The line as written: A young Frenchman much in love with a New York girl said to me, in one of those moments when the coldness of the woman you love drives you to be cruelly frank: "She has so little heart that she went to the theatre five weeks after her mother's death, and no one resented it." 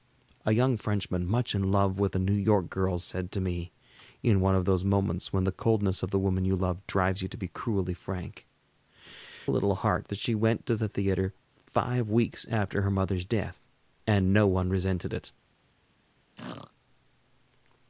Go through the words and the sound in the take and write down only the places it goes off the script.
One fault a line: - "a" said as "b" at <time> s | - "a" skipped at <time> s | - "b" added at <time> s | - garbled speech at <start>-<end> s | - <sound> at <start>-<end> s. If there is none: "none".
- "She has so" skipped at 8.5 s
- throat clearing at 16.4-16.7 s